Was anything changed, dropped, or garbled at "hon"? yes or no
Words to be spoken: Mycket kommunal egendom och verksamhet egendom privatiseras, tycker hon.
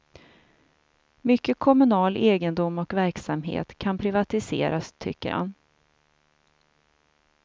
yes